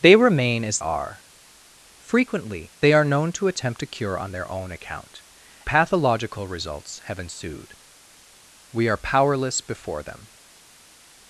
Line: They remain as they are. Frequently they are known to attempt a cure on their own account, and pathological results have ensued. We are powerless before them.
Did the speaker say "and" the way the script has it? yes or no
no